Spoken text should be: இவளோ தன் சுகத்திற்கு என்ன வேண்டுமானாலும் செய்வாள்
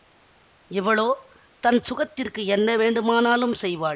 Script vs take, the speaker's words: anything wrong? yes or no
no